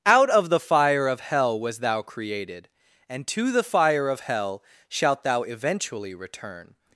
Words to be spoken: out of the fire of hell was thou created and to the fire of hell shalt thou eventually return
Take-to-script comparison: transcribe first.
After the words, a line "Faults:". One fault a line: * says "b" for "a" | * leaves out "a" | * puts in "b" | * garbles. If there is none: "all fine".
out of the fire of hell was thou created and to the fire of hell shalt thou eventually return
Faults:
all fine